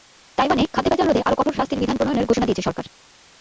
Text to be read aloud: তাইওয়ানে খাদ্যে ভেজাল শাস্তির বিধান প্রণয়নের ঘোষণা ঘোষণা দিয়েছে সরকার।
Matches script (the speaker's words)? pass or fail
fail